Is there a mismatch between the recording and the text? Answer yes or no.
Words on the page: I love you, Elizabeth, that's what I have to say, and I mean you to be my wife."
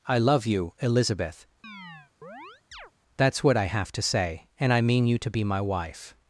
no